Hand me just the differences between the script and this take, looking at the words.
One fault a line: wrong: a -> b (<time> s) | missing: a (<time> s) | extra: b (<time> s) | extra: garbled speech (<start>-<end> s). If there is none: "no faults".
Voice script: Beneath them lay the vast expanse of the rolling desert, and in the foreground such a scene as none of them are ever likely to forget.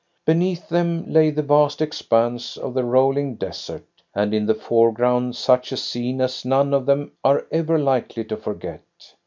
no faults